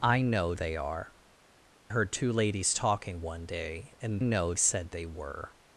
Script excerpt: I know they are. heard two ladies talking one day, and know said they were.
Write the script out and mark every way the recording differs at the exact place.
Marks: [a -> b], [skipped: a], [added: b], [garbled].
I know they are. heard two ladies talking one day, and know said they were.